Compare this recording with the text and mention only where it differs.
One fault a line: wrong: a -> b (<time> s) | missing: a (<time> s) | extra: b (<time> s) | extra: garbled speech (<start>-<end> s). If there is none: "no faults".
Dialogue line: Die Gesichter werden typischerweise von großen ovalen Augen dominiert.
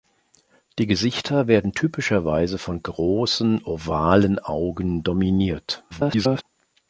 extra: garbled speech (5.9-6.4 s)